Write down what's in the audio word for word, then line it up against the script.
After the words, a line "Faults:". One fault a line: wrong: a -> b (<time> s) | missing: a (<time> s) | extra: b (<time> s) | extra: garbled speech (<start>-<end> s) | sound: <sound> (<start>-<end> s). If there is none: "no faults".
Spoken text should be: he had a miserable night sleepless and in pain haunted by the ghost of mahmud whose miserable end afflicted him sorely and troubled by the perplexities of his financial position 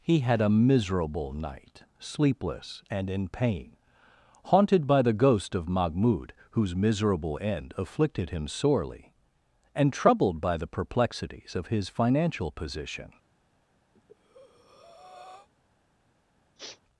he had a miserable night sleepless and in pain haunted by the ghost of mahmud whose miserable end afflicted him sorely and troubled by the perplexities of his financial position
Faults:
sound: breath (13.9-15.5 s)
sound: sniff (16.6-16.8 s)